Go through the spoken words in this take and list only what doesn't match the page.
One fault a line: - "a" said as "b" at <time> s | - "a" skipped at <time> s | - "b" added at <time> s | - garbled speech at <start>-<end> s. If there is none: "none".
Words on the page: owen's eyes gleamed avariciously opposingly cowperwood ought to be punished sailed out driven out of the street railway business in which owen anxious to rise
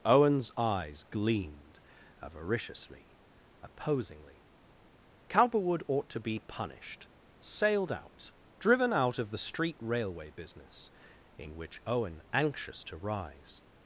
none